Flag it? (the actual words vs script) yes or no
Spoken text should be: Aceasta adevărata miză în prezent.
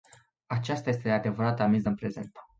yes